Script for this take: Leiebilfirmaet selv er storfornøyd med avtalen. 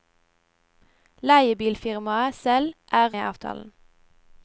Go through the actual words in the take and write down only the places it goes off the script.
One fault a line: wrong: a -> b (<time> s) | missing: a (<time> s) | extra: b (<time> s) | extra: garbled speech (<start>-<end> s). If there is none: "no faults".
missing: storfornøyd med (3.1 s)